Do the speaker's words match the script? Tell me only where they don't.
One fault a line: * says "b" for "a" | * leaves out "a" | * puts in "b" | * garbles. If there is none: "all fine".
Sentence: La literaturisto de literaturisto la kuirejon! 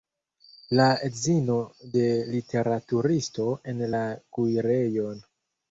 * says "edzino" for "literaturisto"
* puts in "en"